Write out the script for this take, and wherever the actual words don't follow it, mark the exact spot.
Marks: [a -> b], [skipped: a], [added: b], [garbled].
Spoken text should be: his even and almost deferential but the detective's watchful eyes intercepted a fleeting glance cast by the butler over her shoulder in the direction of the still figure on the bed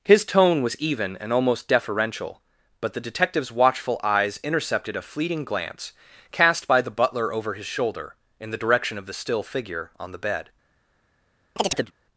his [added: tone was] even and almost deferential but the detective's watchful eyes intercepted a fleeting glance cast by the butler over [her -> his] shoulder in the direction of the still figure on the bed